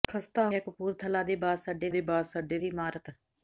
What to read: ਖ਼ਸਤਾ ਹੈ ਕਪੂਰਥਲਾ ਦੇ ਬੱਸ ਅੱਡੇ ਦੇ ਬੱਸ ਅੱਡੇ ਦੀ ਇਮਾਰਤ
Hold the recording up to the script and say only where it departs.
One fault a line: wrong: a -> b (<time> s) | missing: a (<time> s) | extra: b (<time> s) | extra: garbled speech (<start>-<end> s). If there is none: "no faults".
no faults